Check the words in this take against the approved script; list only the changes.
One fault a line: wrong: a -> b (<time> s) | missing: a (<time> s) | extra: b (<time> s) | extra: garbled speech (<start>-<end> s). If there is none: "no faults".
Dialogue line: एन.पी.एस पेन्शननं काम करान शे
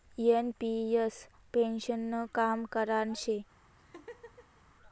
no faults